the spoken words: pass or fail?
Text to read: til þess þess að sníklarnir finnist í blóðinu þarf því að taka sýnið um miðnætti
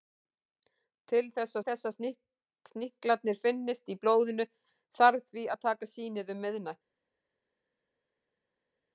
pass